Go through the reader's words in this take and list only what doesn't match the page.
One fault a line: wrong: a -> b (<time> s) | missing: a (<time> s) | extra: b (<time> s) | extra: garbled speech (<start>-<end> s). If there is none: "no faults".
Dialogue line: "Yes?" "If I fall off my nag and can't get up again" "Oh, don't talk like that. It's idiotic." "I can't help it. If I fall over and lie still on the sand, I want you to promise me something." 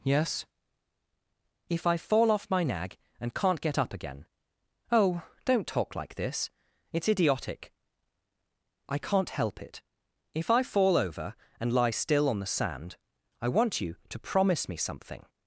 wrong: that -> this (6.2 s)